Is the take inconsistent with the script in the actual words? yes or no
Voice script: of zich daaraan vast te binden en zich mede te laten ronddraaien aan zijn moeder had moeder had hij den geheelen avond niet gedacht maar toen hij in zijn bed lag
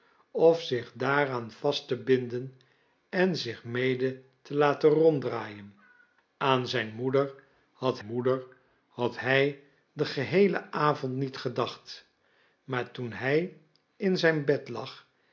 no